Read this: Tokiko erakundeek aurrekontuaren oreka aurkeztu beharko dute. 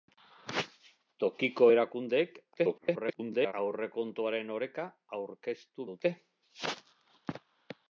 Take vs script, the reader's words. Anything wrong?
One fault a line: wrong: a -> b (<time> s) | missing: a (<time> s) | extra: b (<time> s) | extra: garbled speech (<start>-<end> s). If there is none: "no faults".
extra: garbled speech (2.5-3.5 s)
missing: beharko (5.9 s)